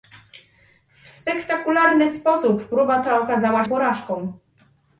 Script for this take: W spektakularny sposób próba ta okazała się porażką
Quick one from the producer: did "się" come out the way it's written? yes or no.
no